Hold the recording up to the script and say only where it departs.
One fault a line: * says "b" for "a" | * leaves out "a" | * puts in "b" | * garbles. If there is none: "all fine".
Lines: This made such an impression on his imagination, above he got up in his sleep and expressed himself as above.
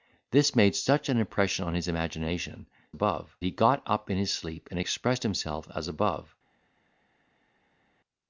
all fine